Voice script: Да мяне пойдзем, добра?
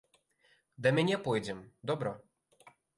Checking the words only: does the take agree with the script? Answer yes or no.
yes